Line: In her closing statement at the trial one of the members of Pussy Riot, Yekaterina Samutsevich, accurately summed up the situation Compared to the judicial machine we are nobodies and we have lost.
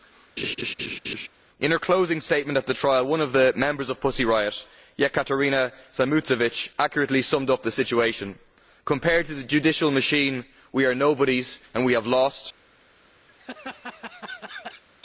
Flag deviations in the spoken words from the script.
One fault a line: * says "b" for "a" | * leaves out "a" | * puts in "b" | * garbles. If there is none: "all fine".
all fine